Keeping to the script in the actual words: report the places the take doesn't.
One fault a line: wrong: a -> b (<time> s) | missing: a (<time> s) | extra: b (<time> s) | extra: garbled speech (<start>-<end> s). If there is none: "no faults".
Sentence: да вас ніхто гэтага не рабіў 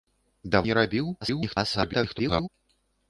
missing: вас ніхто гэтага (0.6 s)
extra: garbled speech (1.2-2.5 s)